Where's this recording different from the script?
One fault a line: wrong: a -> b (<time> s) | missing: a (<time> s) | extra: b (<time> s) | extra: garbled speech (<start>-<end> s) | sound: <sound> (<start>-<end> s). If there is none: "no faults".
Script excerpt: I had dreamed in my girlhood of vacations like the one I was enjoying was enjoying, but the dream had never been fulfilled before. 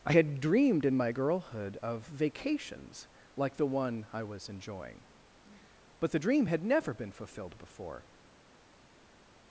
missing: was enjoying (5.1 s)